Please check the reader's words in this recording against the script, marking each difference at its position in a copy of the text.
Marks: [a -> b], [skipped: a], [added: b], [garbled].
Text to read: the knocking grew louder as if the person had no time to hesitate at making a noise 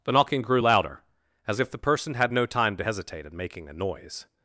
the knocking grew louder as if the person had no time to hesitate [at -> in] making a noise